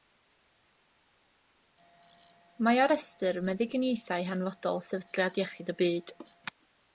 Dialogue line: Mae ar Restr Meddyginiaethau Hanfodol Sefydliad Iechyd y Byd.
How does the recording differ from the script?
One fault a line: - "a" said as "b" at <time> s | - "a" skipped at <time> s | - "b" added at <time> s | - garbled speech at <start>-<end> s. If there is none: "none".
none